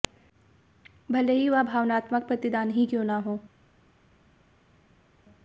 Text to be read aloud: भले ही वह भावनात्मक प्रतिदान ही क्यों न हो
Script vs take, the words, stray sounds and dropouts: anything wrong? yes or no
no